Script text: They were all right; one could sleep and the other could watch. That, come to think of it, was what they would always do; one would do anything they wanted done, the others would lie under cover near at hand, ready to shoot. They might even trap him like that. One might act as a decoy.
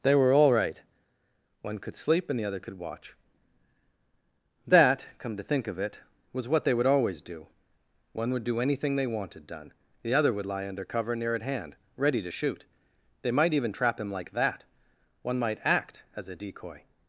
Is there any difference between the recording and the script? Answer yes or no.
yes